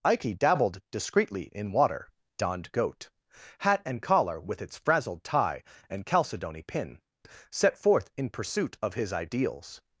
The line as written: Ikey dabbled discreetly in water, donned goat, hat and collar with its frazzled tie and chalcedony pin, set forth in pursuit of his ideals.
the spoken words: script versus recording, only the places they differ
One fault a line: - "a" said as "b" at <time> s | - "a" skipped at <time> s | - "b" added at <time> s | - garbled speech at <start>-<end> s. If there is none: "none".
none